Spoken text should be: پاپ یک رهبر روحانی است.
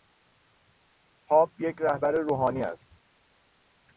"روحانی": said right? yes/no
yes